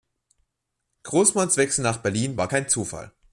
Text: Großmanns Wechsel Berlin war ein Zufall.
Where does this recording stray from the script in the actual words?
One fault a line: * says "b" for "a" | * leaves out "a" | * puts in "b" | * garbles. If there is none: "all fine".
* puts in "nach"
* says "kein" for "ein"